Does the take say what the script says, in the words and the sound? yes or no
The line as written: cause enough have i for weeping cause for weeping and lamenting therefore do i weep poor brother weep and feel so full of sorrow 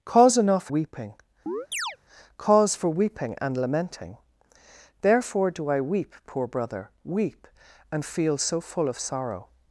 no